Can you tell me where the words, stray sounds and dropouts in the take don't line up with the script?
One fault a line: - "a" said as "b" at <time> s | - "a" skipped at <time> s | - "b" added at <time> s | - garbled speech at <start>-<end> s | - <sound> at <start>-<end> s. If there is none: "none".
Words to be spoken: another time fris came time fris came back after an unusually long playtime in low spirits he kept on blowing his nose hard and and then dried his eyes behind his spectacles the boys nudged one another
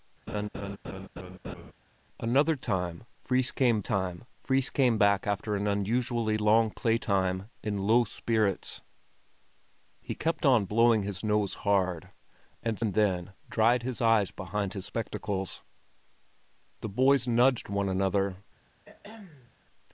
- laugh at 0.3-1.7 s
- throat clearing at 18.9-19.5 s